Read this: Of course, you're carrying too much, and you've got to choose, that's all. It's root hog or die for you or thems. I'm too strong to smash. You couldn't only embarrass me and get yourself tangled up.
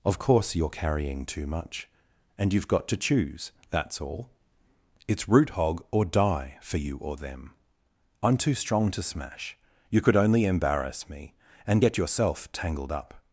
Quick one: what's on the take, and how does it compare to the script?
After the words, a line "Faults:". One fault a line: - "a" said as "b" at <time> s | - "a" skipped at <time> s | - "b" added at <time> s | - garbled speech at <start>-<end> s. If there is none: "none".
Of course, you're carrying too much, and you've got to choose, that's all. It's root hog or die for you or them. I'm too strong to smash. You could only embarrass me and get yourself tangled up.
Faults:
- "thems" said as "them" at 7.2 s
- "couldn't" said as "could" at 10.0 s